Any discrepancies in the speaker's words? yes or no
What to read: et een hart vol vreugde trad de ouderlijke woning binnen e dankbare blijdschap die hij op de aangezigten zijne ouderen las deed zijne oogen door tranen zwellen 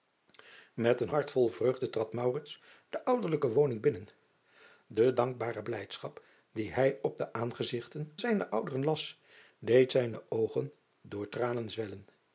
no